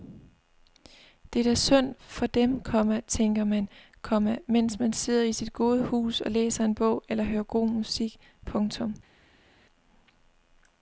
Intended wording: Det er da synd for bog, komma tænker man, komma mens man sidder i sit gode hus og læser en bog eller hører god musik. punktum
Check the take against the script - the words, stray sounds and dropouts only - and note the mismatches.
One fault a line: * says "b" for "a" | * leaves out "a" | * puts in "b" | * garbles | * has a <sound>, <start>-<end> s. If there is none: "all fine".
* says "dem" for "bog"